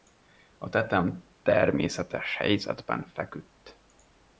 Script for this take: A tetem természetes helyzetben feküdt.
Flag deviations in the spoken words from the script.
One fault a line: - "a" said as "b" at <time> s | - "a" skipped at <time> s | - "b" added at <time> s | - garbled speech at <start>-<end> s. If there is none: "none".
none